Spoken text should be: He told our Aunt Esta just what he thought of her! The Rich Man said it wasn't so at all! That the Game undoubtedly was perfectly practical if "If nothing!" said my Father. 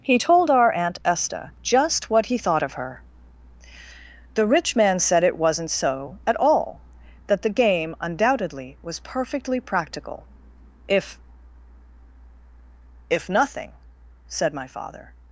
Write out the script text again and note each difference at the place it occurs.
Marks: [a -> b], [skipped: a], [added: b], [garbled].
He told our Aunt Esta just what he thought of her! The Rich Man said it wasn't so at all! That the Game undoubtedly was perfectly practical if "If nothing!" said my Father.